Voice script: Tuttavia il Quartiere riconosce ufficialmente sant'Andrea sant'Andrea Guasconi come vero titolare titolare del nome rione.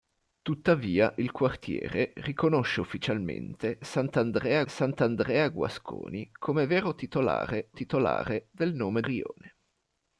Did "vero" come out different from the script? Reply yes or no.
no